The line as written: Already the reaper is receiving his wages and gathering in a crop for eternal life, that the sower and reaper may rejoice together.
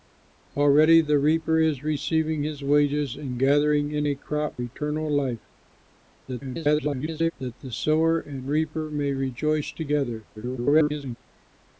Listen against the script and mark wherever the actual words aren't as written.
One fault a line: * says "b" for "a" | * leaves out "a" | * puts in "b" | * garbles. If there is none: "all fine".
* leaves out "for"
* garbles
* garbles